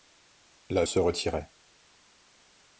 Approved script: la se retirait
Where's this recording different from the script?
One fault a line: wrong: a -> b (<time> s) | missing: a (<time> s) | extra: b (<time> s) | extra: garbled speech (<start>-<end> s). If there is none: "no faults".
no faults